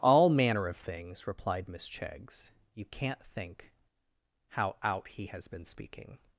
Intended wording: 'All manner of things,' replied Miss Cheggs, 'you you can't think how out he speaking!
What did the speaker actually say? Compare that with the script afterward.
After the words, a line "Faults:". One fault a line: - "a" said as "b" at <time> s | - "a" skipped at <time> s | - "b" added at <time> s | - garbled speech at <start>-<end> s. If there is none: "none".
'All manner of things,' replied Miss Cheggs, 'you can't think how out he has been speaking!
Faults:
- "you" skipped at 2.9 s
- "has been" added at 5.3 s